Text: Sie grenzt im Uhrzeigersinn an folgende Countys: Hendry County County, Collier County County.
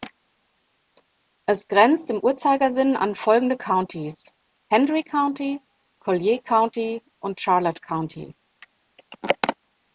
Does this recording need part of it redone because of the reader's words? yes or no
yes